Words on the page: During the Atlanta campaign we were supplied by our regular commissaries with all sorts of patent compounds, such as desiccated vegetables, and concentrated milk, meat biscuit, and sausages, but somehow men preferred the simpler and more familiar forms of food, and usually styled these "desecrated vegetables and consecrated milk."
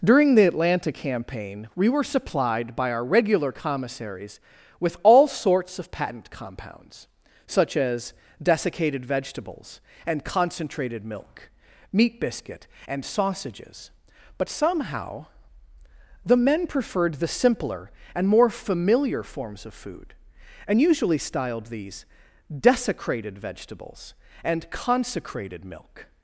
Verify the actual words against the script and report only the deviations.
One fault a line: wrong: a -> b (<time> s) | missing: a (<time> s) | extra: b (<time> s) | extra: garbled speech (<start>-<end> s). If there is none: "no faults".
extra: the (16.3 s)